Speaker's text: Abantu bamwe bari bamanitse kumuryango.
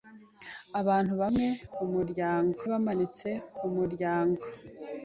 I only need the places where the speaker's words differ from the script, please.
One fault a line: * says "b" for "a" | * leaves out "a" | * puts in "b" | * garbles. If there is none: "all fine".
* says "kumuryango" for "bari"